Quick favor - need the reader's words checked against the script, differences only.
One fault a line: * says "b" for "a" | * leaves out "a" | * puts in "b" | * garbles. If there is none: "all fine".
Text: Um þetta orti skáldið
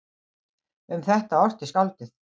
all fine